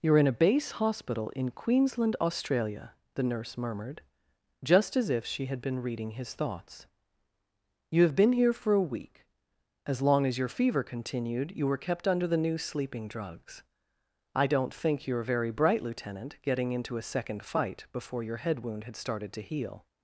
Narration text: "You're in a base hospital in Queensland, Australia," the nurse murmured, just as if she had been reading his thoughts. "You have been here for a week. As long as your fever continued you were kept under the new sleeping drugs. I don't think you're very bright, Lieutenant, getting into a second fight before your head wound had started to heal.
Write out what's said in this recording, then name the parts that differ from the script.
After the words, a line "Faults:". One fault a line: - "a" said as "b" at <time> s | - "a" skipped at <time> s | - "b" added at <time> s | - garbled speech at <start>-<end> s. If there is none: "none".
"You're in a base hospital in Queensland, Australia," the nurse murmured, just as if she had been reading his thoughts. "You have been here for a week. As long as your fever continued you were kept under the new sleeping drugs. I don't think you're very bright, Lieutenant, getting into a second fight before your head wound had started to heal.
Faults:
none